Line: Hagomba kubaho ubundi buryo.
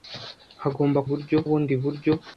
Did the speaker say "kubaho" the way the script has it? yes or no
no